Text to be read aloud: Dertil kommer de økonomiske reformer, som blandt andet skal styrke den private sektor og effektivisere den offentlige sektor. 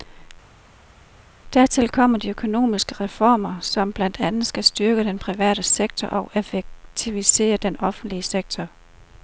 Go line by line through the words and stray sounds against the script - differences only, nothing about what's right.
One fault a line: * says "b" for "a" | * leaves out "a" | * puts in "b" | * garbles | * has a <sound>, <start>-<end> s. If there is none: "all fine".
all fine